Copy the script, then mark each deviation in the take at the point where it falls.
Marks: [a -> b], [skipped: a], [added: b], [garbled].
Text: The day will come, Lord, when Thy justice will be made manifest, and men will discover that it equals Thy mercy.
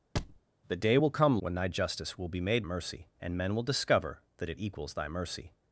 The day will come, [skipped: Lord,] when Thy justice will be made [manifest, -> mercy] and men will discover that it equals Thy mercy.